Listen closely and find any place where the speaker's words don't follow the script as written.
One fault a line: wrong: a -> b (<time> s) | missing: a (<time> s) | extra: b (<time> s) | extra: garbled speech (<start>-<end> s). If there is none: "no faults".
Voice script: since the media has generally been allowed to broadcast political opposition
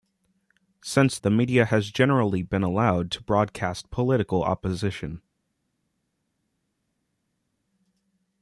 no faults